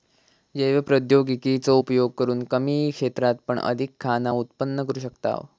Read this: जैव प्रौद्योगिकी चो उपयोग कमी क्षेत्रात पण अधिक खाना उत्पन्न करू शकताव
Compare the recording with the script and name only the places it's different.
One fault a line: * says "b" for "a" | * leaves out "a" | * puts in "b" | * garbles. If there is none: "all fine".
* puts in "करून"